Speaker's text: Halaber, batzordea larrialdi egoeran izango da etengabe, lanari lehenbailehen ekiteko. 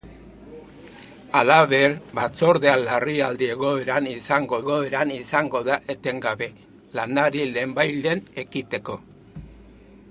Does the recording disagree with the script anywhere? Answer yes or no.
yes